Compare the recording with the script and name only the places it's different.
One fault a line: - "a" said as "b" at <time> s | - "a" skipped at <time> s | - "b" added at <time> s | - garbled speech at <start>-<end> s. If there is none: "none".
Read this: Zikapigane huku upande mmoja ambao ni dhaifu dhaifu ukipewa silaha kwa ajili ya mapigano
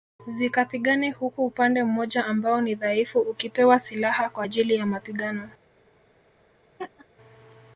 - "dhaifu" skipped at 3.2 s